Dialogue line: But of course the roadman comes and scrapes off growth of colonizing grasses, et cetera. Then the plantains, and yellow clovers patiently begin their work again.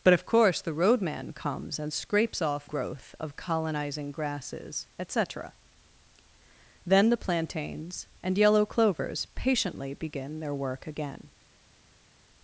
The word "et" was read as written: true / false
true